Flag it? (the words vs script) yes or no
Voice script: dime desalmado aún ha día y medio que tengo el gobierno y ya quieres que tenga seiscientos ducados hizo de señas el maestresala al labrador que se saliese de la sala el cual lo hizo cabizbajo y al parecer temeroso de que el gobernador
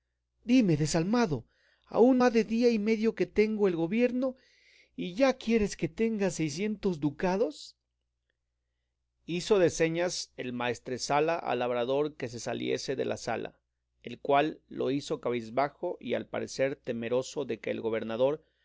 no